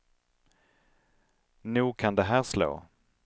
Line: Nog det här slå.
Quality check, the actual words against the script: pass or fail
fail